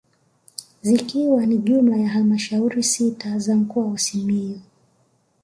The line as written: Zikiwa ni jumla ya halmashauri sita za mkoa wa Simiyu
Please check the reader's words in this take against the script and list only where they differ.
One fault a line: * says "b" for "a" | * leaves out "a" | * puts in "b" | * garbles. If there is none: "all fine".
all fine